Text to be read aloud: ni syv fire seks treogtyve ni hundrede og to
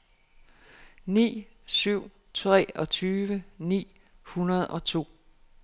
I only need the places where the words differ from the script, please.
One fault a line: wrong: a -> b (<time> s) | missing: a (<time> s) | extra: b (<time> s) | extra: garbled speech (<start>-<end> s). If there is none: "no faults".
missing: fire seks (2.1 s)